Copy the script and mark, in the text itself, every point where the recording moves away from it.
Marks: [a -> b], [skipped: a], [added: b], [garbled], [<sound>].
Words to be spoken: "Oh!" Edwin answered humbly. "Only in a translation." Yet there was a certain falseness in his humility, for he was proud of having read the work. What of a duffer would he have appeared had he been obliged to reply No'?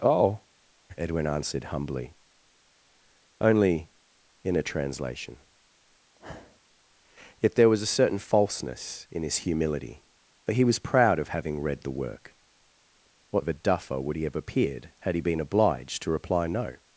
"Oh!" Edwin answered humbly. "Only in a translation." [sniff] Yet there was a certain falseness in his humility, for he was proud of having read the work. What of a duffer would he have appeared had he been obliged to reply No'?